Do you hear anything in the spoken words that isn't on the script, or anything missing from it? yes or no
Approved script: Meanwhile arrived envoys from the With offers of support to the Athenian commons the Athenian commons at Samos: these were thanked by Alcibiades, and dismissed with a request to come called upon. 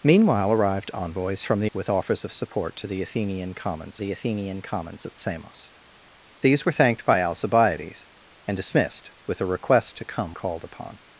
no